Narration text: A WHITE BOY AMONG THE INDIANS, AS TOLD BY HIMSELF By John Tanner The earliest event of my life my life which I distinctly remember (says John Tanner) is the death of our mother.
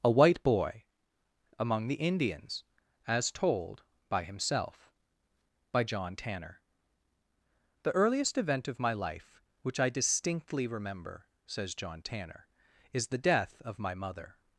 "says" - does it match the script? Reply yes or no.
yes